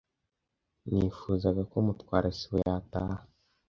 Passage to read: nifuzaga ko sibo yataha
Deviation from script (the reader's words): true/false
true